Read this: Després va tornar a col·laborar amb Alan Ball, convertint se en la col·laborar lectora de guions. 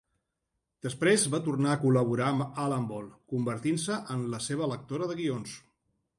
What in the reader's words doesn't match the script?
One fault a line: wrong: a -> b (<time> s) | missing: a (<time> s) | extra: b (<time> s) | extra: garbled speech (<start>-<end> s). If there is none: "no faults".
wrong: col·laborar -> seva (4.5 s)